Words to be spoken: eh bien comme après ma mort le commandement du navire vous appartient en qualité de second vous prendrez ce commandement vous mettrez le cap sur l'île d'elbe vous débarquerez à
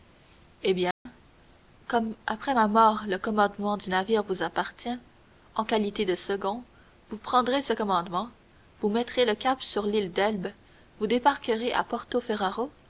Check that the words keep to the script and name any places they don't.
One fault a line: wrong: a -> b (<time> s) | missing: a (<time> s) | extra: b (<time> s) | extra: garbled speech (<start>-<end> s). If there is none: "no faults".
no faults